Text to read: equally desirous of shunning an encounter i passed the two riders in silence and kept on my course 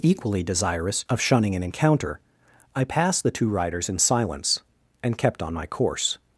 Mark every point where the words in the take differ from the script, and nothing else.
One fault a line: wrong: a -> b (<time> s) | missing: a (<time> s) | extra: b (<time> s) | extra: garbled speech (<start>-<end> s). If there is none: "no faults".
no faults